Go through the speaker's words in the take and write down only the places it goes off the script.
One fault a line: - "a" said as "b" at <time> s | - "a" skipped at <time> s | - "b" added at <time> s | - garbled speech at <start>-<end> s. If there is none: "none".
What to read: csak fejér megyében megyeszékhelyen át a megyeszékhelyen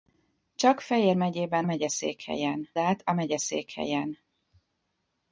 none